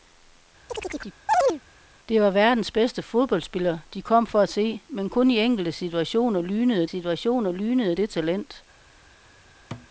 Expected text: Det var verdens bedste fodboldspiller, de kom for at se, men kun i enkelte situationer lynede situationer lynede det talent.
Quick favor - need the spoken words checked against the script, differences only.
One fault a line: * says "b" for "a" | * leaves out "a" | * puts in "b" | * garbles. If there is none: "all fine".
all fine